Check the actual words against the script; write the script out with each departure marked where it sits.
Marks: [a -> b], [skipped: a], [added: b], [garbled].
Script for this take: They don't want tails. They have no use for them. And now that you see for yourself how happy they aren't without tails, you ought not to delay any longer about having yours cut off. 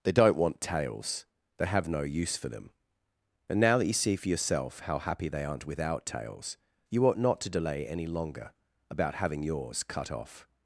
They don't want tails. They have no use for them. And now that you see for yourself how happy they aren't without tails, you ought not to delay any longer about having yours cut off.